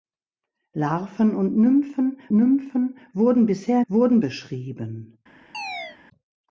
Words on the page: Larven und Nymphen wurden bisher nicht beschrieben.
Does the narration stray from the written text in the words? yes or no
yes